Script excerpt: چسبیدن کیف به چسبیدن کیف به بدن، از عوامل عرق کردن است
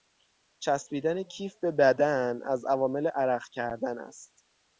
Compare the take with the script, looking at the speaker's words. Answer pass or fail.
fail